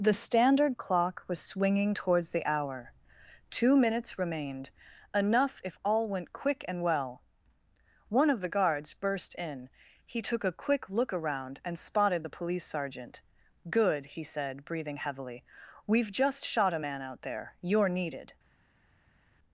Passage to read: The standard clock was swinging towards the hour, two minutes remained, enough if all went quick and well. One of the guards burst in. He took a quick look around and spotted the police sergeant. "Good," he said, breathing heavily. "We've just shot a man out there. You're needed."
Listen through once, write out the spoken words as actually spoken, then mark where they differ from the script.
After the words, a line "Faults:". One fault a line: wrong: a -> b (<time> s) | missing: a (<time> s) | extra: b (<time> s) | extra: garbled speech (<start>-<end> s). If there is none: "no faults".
The standard clock was swinging towards the hour, two minutes remained, enough if all went quick and well. One of the guards burst in. He took a quick look around and spotted the police sergeant. "Good," he said, breathing heavily. "We've just shot a man out there. You're needed."
Faults:
no faults